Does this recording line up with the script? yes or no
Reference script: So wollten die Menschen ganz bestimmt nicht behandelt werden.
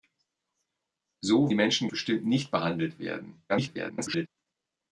no